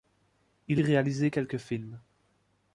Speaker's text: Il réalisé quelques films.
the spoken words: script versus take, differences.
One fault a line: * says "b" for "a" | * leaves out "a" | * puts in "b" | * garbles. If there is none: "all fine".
all fine